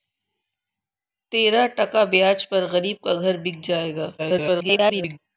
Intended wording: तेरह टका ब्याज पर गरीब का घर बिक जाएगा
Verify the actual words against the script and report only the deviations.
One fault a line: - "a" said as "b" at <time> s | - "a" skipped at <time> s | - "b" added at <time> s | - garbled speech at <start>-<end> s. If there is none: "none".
- garbled speech at 4.2-5.2 s